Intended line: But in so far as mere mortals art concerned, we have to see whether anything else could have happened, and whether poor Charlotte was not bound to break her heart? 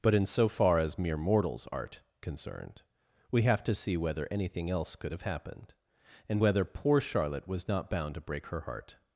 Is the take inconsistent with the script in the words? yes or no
no